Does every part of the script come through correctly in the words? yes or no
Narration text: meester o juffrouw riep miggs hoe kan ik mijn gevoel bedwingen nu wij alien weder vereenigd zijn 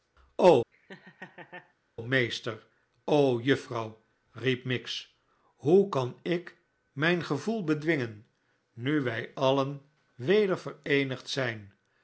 yes